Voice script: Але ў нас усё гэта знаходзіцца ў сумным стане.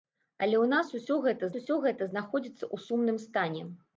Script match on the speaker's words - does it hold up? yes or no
no